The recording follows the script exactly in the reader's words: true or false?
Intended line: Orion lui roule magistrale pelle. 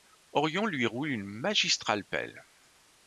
false